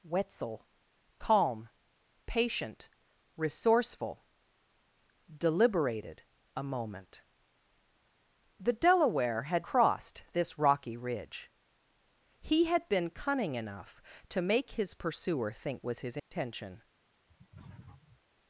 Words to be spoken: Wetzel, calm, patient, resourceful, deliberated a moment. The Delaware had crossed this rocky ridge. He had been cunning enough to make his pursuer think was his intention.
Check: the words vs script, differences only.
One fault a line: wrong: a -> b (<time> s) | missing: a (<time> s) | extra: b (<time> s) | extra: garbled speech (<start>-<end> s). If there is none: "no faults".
no faults